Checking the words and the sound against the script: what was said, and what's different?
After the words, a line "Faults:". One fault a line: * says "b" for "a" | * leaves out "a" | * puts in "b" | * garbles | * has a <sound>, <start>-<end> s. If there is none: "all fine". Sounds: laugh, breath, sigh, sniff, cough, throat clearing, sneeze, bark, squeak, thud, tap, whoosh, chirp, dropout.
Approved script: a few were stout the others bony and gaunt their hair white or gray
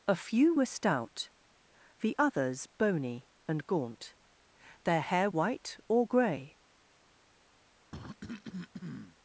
a few were stout the others bony and gaunt their hair white or gray
Faults:
* has a cough, 7.9-9.2 s